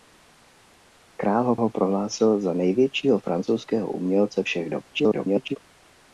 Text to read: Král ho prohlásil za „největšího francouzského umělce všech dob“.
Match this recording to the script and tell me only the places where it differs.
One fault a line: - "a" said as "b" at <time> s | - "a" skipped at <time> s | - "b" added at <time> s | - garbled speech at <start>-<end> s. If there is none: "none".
- "ho" added at 1.6 s
- garbled speech at 4.9-5.6 s